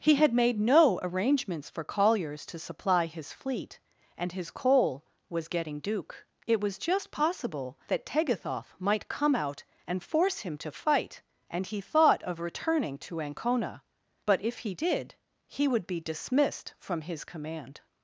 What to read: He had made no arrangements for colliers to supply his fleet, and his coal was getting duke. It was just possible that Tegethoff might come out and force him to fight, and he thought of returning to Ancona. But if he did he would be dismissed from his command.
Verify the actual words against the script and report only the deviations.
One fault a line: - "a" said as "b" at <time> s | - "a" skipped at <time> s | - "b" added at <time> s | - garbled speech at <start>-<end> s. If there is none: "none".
none